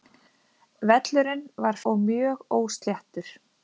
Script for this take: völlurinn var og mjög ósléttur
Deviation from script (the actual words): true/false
false